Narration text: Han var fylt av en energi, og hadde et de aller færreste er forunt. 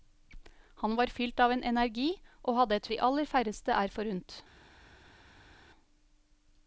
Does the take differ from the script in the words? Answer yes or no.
no